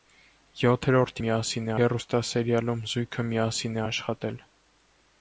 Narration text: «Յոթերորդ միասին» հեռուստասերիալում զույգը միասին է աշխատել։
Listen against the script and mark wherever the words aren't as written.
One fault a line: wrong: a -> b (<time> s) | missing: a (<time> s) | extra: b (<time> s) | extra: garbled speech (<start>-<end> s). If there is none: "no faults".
no faults